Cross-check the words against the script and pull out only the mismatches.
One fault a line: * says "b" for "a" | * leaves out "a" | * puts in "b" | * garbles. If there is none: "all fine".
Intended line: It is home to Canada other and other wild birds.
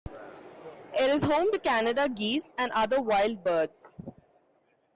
* says "geese" for "other"